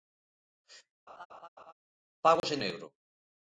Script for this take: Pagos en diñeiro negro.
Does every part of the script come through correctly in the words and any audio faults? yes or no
no